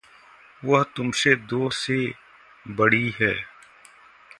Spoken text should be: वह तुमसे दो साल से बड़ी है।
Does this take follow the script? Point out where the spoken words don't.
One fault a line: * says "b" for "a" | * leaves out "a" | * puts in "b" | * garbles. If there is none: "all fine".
* leaves out "साल"